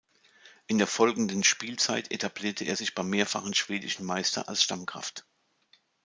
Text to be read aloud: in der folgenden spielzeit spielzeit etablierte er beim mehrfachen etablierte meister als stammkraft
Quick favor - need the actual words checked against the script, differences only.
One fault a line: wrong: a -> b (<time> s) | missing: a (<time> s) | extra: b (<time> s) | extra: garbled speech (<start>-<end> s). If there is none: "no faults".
missing: spielzeit (2.1 s)
extra: sich (2.7 s)
wrong: etablierte -> schwedischen (3.5 s)